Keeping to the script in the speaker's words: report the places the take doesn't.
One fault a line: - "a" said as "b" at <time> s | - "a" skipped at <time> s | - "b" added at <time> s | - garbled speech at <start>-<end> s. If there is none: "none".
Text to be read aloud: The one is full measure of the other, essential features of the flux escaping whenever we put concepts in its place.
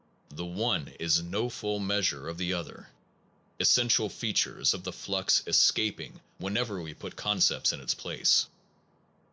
- "no" added at 1.2 s